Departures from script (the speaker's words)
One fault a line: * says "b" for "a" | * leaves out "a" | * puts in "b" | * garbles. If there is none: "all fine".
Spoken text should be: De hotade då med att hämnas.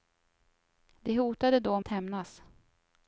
* leaves out "med"